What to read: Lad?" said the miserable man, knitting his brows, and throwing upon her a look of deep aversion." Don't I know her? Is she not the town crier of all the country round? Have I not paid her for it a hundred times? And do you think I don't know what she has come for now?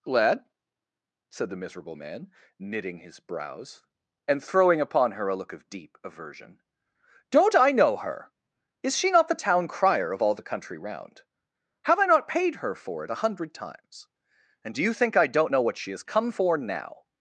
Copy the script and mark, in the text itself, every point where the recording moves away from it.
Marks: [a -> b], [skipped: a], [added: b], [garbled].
Lad?" said the miserable man, knitting his brows, and throwing upon her a look of deep aversion." Don't I know her? Is she not the town crier of all the country round? Have I not paid her for it a hundred times? And do you think I don't know what she has come for now?